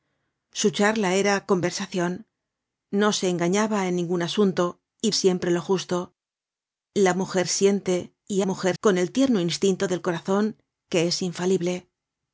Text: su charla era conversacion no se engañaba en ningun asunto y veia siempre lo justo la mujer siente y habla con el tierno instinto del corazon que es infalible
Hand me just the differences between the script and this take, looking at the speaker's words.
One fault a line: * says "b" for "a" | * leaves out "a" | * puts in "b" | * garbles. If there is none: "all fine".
* leaves out "veia"
* says "mujer" for "habla"